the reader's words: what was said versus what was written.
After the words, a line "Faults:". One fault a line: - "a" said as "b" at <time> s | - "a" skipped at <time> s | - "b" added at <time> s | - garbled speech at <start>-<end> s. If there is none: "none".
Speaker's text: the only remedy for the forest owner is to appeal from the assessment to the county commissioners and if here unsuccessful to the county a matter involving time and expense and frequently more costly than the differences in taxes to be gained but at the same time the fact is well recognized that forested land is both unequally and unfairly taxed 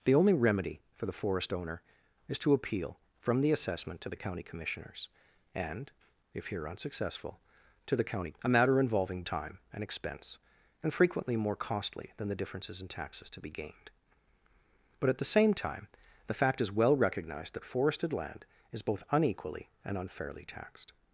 the only remedy for the forest owner is to appeal from the assessment to the county commissioners and if here unsuccessful to the county a matter involving time and expense and frequently more costly than the differences in taxes to be gained but at the same time the fact is well recognized that forested land is both unequally and unfairly taxed
Faults:
none